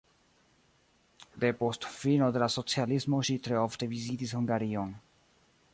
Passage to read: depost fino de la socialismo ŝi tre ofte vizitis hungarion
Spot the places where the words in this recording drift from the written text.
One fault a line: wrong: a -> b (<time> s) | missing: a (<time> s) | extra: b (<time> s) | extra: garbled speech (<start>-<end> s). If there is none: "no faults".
no faults